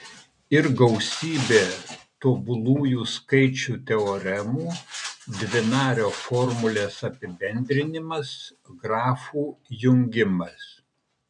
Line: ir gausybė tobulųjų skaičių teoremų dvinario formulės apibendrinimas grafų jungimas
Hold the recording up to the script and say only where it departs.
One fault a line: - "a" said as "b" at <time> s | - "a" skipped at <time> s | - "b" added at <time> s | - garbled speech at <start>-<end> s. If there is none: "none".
none